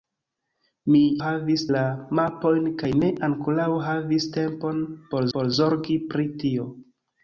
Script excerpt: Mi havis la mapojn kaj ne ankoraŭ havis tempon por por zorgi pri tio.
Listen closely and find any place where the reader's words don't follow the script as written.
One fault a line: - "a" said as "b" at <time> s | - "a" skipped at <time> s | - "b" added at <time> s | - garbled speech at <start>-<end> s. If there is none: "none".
none